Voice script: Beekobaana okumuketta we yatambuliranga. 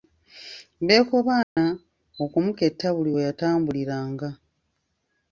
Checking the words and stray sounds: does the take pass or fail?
fail